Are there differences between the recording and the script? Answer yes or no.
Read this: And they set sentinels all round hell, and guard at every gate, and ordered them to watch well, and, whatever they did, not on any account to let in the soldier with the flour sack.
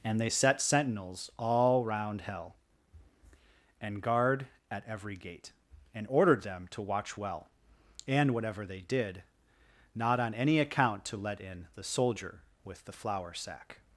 no